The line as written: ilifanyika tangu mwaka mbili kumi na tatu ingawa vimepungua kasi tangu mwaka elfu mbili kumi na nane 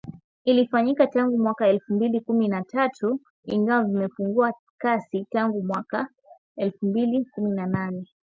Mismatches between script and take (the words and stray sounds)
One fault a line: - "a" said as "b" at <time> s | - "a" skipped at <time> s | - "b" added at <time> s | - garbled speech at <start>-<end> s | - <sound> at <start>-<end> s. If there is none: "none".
- "elfu" added at 1.7 s